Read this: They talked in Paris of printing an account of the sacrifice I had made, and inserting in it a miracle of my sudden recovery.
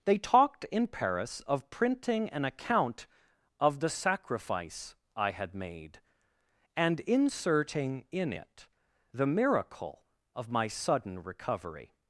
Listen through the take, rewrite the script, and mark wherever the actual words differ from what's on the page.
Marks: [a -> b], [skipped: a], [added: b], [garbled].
They talked in Paris of printing an account of the sacrifice I had made, and inserting in it [a -> the] miracle of my sudden recovery.